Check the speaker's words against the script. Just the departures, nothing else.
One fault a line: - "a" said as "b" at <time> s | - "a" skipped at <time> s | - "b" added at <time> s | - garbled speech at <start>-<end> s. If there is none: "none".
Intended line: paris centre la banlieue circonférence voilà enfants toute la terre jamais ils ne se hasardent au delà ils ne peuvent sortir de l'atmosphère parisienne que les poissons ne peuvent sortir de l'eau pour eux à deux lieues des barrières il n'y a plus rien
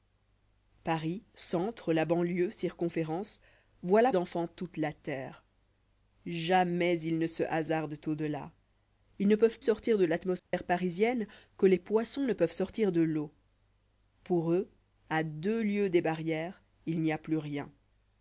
none